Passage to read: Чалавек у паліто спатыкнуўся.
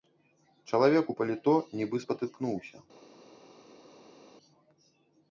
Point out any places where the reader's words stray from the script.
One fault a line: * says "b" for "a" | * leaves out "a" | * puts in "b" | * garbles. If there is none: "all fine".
* puts in "нібы"